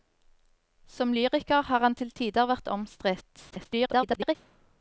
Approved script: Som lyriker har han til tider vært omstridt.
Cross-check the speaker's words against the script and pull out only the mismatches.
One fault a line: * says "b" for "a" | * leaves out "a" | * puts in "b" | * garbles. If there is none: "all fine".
* garbles